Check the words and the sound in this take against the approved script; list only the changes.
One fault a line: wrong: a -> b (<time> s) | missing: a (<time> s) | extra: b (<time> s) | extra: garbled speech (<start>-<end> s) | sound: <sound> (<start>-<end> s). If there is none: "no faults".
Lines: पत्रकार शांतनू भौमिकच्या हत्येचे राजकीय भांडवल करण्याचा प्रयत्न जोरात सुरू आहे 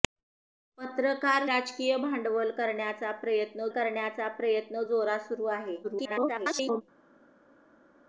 wrong: शांतनू भौमिकच्या हत्येचे राजकीय भांडवल -> राजकीय भांडवल करण्याचा प्रयत्न (1.4 s)
extra: garbled speech (5.8-6.8 s)